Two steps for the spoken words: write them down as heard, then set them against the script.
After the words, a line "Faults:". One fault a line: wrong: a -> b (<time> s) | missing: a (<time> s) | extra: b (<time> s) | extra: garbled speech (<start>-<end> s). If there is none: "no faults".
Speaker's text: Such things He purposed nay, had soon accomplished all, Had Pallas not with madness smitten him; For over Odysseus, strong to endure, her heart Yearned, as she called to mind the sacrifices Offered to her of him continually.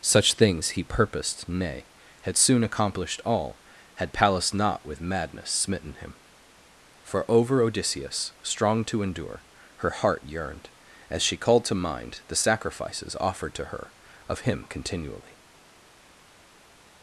Such things He purposed nay, had soon accomplished all, Had Pallas not with madness smitten him; For over Odysseus, strong to endure, her heart Yearned, as she called to mind the sacrifices Offered to her of him continually.
Faults:
no faults